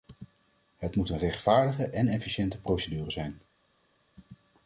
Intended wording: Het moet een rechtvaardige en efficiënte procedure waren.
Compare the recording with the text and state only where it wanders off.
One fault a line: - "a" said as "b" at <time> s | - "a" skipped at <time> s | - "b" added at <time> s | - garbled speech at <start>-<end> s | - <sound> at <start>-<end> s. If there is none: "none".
- "waren" said as "zijn" at 3.1 s